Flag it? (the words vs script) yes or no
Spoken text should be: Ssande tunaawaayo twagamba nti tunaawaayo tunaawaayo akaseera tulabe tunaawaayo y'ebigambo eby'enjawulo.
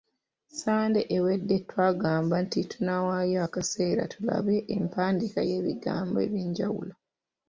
yes